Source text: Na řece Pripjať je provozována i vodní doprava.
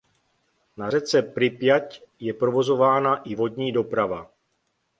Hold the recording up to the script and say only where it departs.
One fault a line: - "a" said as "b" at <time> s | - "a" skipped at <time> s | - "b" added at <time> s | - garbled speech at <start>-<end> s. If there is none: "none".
none